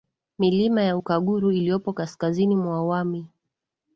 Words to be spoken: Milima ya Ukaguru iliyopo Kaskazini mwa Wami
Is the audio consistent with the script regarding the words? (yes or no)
yes